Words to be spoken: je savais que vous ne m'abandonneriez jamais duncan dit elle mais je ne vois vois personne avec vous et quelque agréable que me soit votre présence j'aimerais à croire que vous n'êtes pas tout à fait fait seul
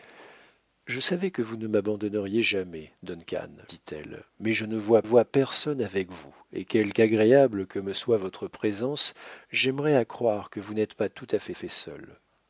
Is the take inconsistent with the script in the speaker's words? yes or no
no